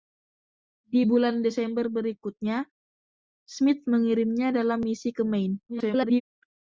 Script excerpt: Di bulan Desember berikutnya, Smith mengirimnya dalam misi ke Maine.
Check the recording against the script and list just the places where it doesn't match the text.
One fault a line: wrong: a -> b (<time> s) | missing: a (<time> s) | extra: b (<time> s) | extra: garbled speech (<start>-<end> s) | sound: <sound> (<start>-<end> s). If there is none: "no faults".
extra: garbled speech (5.7-6.2 s)